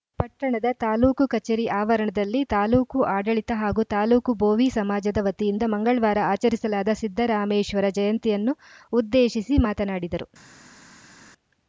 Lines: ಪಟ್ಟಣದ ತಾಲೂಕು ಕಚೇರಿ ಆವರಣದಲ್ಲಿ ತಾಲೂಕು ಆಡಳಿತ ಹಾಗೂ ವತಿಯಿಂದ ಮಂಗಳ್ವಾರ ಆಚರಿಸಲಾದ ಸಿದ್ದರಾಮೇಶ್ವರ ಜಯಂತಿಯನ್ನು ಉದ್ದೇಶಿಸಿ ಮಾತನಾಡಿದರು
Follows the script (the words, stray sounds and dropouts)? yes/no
no